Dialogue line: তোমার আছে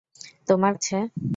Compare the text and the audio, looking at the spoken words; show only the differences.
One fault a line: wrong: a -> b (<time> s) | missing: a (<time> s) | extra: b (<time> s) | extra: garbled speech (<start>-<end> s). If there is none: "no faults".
no faults